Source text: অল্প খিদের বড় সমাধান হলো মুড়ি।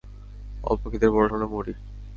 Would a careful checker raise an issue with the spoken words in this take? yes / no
yes